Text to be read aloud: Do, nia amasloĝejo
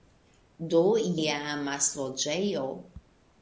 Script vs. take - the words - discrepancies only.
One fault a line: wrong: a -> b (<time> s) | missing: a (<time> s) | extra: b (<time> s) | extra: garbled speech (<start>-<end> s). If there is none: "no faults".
no faults